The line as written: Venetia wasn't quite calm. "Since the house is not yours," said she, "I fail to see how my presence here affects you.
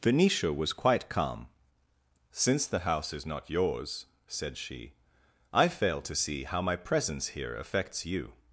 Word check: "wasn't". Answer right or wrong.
wrong